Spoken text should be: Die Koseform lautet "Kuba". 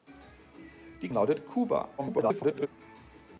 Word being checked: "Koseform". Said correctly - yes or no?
no